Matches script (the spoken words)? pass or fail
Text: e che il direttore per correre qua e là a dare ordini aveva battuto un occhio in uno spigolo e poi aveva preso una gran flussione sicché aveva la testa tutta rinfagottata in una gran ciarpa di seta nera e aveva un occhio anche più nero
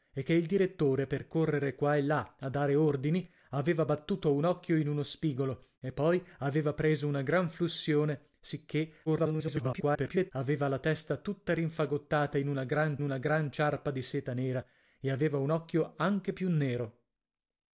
fail